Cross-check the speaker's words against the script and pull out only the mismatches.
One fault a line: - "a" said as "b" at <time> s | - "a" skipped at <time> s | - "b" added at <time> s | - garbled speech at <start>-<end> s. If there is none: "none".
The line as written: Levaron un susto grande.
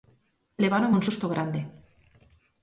none